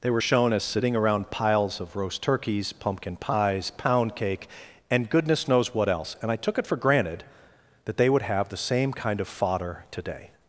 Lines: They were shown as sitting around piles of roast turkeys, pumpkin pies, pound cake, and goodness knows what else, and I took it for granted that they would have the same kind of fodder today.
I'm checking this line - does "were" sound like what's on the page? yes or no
yes